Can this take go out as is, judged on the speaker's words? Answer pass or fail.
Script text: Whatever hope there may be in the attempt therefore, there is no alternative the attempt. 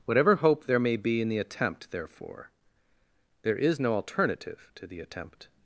fail